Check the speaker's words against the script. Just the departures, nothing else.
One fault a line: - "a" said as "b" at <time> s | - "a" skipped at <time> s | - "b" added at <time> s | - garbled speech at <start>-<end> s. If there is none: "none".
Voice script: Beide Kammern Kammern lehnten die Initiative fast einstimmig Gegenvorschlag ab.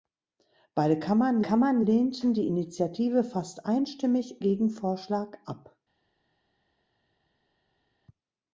none